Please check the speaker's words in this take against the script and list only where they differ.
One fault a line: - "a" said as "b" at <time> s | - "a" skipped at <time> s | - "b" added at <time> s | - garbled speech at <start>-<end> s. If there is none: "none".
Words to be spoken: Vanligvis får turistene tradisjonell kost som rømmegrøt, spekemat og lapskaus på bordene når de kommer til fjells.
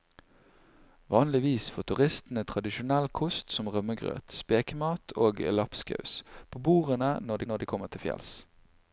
- "når" added at 7.5 s